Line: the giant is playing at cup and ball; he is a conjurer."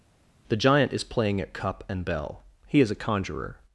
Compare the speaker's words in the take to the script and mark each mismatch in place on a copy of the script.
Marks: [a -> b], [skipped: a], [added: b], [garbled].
the giant is playing at cup and [ball; -> bell] he is a conjurer."